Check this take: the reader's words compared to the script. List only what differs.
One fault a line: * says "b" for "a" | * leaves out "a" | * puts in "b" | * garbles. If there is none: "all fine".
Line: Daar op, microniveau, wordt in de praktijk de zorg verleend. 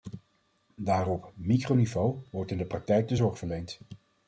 all fine